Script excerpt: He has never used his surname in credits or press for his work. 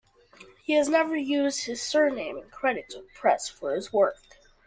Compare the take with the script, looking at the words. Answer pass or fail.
pass